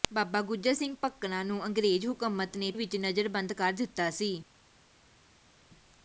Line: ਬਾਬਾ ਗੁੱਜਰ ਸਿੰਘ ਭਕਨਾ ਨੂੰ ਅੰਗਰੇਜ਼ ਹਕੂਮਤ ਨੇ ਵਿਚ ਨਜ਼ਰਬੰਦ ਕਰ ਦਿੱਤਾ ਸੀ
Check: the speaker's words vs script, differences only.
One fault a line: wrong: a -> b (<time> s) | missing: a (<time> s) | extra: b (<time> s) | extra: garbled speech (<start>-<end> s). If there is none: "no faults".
no faults